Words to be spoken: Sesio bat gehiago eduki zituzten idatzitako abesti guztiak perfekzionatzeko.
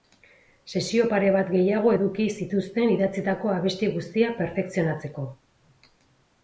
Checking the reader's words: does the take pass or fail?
fail